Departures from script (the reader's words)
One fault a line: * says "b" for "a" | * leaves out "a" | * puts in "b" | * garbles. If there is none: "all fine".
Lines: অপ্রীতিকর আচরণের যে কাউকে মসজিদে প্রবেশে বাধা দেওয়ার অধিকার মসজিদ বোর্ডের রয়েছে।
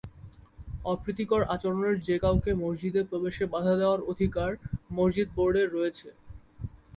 all fine